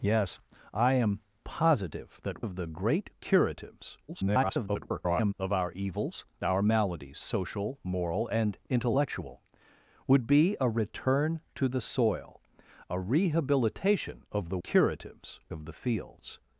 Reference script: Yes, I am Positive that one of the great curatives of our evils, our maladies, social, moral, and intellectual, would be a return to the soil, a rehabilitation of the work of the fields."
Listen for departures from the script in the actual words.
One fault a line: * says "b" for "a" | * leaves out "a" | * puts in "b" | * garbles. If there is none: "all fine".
* leaves out "one"
* garbles
* says "curatives" for "work"